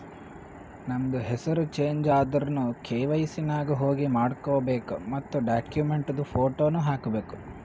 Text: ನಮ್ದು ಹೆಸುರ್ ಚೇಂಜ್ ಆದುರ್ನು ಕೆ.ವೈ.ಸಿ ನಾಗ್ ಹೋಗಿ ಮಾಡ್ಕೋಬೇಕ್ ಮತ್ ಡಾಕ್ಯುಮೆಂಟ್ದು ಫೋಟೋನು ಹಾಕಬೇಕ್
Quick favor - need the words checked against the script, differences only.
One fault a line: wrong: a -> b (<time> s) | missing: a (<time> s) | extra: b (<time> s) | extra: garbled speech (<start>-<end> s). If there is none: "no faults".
no faults